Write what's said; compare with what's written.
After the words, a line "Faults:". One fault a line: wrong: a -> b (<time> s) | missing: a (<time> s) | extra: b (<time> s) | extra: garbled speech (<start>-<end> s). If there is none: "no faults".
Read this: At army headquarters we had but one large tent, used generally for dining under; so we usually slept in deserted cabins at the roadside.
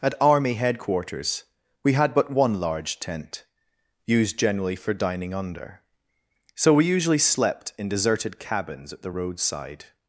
At army headquarters we had but one large tent, used generally for dining under; so we usually slept in deserted cabins at the roadside.
Faults:
no faults